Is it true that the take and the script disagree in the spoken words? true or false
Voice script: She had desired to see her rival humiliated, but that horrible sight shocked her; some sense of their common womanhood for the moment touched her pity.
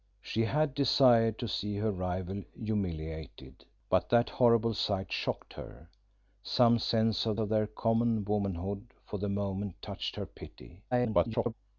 true